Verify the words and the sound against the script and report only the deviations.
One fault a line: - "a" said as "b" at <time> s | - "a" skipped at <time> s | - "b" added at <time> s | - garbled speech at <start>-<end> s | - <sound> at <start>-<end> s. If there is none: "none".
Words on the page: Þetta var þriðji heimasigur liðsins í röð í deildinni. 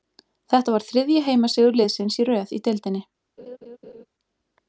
- laugh at 3.4-4.1 s